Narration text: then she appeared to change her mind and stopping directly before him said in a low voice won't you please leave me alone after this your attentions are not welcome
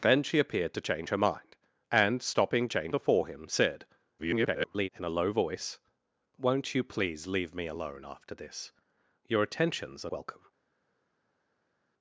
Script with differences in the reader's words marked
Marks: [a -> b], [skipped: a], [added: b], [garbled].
then she appeared to change her mind and stopping [directly -> change] before him said [garbled] in a low voice won't you please leave me alone after this your attentions are [skipped: not] welcome